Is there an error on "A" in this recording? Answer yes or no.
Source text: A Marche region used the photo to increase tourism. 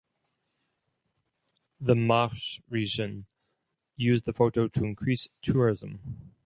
yes